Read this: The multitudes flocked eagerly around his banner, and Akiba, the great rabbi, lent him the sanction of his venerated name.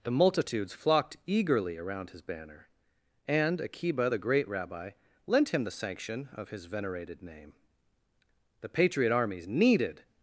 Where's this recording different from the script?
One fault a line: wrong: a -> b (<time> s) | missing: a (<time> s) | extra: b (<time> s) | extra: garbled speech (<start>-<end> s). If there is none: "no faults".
extra: The patriot armies needed (8.6 s)